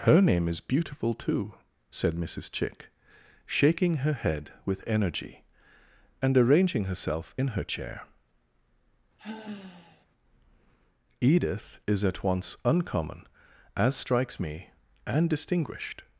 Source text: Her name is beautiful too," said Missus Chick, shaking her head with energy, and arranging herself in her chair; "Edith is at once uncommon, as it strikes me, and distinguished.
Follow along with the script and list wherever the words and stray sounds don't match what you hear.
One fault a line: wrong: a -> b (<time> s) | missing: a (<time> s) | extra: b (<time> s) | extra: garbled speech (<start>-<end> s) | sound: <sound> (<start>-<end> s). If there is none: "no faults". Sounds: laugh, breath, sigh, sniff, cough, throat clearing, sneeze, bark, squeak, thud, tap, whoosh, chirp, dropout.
sound: sigh (9.2-10.1 s)
missing: it (14.0 s)